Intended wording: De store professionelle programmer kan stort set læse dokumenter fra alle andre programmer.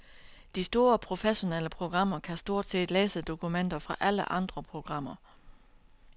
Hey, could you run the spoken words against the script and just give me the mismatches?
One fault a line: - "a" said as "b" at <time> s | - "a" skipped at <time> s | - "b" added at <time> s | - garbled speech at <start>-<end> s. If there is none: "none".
none